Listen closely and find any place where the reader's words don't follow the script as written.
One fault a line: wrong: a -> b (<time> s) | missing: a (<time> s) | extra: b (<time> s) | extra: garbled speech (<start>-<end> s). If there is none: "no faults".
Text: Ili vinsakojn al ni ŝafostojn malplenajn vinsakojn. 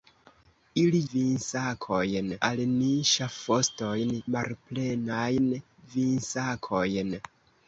no faults